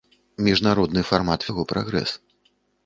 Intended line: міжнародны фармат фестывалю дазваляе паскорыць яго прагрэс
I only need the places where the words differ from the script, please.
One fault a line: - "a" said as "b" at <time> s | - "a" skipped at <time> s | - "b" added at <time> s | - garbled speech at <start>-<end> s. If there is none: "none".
- "фестывалю дазваляе паскорыць" skipped at 1.4 s